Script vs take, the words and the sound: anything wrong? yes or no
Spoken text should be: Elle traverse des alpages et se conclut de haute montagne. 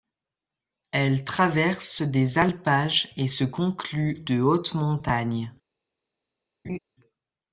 yes